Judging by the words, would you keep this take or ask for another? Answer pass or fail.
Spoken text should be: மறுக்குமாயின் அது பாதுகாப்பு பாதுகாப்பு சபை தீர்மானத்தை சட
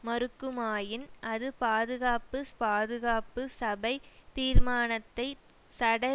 pass